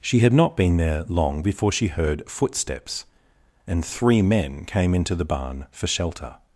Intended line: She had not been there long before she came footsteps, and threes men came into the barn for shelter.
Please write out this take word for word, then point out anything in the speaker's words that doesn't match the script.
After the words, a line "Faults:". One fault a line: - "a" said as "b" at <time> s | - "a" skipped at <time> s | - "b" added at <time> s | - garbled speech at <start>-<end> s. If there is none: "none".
She had not been there long before she heard footsteps, and three men came into the barn for shelter.
Faults:
- "came" said as "heard" at 1.9 s
- "threes" said as "three" at 3.9 s